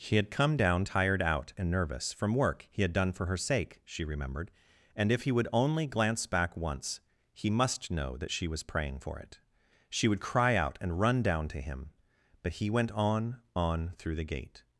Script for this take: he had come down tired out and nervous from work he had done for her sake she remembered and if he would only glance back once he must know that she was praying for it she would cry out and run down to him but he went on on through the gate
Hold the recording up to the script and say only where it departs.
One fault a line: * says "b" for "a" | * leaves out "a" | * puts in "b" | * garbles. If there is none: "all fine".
* says "she" for "he"